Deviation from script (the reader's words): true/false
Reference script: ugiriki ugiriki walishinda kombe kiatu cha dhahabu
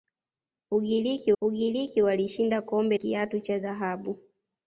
false